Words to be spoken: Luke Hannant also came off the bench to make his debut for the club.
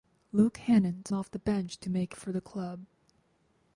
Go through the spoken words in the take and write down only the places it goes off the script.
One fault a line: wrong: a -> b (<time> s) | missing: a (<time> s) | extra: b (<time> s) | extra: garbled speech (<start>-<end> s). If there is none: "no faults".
missing: also came (1.1 s)
missing: his debut (2.1 s)